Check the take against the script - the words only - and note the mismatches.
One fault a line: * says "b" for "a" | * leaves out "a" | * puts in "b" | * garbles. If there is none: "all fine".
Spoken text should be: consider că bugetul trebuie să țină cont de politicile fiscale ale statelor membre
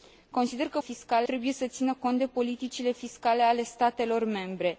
* says "fiscale" for "bugetul"